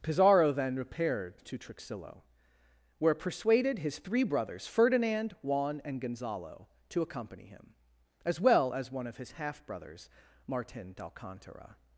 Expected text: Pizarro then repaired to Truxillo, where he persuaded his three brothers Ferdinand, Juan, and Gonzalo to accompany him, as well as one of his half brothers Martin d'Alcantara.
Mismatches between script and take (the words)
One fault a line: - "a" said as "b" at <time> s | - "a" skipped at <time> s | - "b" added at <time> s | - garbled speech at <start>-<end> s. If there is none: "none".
- "he" skipped at 3.1 s